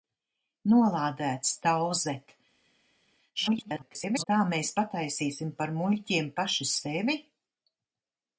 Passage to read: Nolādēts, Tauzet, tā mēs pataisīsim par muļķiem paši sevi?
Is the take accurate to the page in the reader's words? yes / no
no